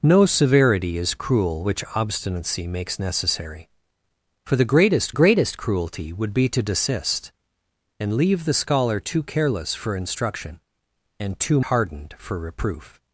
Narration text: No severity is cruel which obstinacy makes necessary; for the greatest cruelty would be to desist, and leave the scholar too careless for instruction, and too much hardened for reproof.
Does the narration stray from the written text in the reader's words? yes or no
yes